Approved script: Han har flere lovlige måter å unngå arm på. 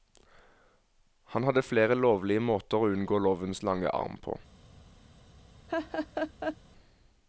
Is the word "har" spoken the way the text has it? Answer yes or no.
no